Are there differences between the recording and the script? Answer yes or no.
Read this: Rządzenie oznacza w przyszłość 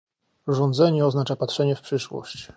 yes